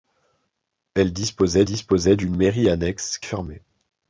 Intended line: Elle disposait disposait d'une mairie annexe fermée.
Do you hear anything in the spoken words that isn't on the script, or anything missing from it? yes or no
no